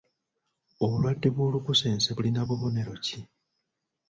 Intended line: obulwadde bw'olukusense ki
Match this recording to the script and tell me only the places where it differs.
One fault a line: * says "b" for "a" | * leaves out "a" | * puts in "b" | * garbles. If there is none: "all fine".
* puts in "bulina bubonero"